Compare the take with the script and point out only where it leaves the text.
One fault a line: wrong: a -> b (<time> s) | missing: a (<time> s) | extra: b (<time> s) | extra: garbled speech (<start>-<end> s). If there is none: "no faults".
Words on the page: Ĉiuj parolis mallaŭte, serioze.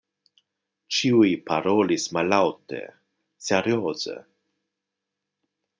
no faults